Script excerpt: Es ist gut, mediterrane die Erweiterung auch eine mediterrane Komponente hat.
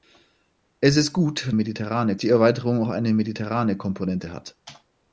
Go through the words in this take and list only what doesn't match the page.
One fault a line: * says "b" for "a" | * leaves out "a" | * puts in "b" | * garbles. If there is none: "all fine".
all fine